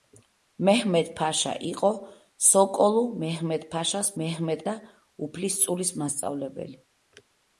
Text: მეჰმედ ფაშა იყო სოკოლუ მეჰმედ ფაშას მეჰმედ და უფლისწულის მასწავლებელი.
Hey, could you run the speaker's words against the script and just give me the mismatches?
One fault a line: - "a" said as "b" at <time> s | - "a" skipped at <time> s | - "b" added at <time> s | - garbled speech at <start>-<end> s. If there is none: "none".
none